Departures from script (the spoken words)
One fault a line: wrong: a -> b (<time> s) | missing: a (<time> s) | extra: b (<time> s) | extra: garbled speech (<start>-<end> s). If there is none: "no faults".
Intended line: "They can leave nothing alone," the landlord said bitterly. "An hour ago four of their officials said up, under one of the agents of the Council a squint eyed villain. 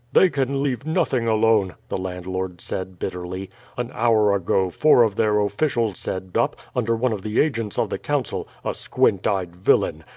no faults